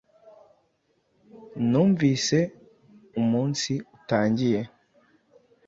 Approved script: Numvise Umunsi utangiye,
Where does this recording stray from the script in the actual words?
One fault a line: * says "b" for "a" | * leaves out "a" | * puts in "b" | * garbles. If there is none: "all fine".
all fine